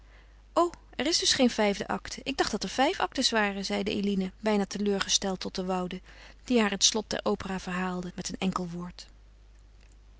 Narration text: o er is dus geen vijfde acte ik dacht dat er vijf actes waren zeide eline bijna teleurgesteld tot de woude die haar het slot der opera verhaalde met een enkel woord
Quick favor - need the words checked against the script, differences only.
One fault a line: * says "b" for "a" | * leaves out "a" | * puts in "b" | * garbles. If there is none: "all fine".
all fine